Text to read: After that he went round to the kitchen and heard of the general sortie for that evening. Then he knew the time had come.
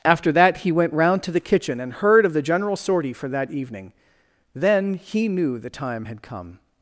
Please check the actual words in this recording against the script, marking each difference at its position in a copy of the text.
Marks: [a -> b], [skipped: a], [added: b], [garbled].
After that he went round to the kitchen and heard of the general sortie for that evening. Then he knew the time had come.